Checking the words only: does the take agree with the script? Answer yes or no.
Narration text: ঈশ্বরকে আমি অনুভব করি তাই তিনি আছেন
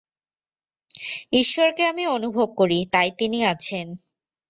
yes